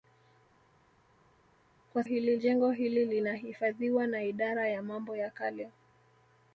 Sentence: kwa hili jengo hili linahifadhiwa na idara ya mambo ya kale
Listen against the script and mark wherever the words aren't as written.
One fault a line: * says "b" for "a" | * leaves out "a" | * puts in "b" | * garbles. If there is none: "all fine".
all fine